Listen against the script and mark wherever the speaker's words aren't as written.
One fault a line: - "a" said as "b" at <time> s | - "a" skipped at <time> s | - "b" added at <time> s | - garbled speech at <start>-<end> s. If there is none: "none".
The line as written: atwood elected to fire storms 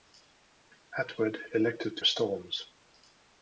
- "fire" skipped at 2.0 s